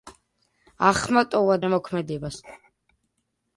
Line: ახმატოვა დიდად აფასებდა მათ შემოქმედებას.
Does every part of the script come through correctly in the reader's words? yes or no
no